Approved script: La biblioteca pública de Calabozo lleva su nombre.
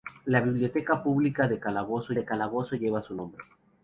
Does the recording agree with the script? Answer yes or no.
no